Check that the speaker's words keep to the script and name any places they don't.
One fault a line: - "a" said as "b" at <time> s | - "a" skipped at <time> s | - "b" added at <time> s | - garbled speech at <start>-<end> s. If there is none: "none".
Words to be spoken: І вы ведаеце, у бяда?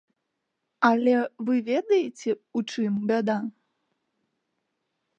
- "І" said as "Але" at 0.9 s
- "чым" added at 2.7 s